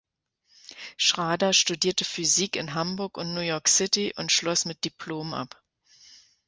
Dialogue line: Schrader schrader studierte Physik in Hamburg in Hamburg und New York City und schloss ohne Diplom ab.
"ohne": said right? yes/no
no